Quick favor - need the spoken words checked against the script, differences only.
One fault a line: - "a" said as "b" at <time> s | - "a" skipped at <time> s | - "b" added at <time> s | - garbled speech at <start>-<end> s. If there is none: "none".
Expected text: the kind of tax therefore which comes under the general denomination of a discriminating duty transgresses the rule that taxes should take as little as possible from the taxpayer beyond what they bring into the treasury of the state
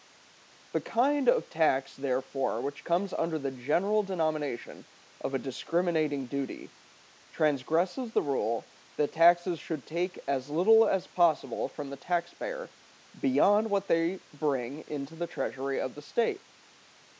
none